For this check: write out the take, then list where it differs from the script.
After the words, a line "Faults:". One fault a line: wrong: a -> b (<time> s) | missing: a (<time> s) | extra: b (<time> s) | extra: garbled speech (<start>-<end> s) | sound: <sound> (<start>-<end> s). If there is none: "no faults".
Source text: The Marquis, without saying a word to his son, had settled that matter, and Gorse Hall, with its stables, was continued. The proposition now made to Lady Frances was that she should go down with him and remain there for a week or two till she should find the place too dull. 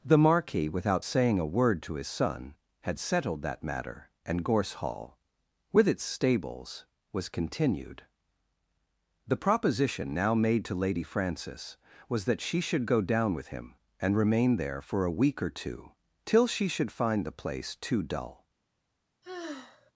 The Marquis, without saying a word to his son, had settled that matter, and Gorse Hall, with its stables, was continued. The proposition now made to Lady Frances was that she should go down with him and remain there for a week or two till she should find the place too dull.
Faults:
sound: sigh (19.2-19.9 s)